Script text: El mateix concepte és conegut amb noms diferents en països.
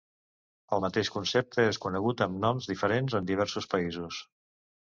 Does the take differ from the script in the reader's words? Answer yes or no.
yes